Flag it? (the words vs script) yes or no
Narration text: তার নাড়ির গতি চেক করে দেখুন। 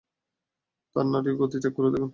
no